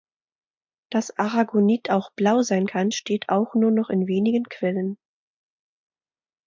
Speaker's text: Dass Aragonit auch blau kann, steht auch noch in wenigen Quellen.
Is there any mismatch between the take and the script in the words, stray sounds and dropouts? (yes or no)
yes